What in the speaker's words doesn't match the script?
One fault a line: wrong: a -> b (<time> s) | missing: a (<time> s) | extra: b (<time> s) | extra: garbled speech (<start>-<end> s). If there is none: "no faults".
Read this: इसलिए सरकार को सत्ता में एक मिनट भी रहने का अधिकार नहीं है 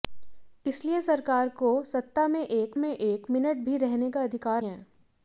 extra: में एक (2.8 s)
missing: नहीं (4.6 s)